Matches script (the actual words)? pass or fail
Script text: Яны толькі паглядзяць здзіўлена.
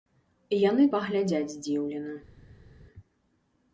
fail